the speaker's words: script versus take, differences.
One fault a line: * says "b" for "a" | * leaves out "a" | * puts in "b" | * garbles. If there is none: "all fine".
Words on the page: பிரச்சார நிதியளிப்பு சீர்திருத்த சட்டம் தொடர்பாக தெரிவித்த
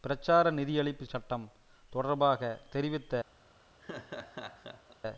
* leaves out "சீர்திருத்த"